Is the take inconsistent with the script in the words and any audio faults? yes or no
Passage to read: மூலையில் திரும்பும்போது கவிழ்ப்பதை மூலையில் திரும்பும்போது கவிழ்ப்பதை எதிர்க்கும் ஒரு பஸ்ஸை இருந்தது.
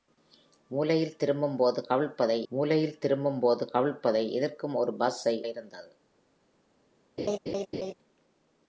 yes